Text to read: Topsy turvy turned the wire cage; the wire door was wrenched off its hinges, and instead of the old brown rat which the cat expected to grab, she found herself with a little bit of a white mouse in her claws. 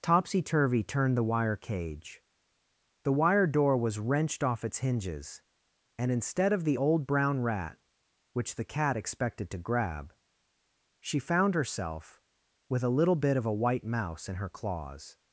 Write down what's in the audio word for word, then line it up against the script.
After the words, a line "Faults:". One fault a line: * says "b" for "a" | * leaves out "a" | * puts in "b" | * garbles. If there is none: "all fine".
Topsy turvy turned the wire cage; the wire door was wrenched off its hinges, and instead of the old brown rat which the cat expected to grab, she found herself with a little bit of a white mouse in her claws.
Faults:
all fine